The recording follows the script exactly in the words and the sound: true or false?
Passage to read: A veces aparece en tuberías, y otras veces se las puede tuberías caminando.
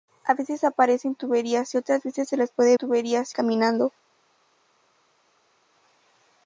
true